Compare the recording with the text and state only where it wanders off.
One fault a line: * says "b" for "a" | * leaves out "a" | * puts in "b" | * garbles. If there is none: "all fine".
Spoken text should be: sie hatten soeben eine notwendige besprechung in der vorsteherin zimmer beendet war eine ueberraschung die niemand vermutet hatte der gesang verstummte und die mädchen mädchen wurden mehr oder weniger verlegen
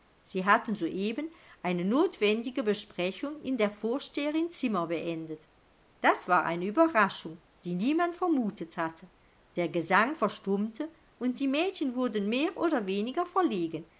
* puts in "das"
* leaves out "mädchen"